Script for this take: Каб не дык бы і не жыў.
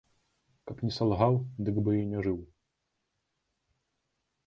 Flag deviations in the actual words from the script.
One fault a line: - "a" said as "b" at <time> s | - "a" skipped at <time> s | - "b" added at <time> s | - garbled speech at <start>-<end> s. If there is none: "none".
- "салгаў" added at 0.9 s